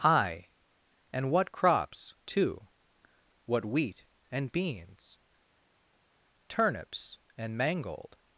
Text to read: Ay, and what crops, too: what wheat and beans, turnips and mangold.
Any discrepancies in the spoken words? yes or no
no